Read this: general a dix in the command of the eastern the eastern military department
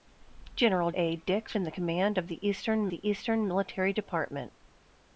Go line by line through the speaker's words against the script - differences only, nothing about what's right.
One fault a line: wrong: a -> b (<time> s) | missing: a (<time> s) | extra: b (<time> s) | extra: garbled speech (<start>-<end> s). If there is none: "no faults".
no faults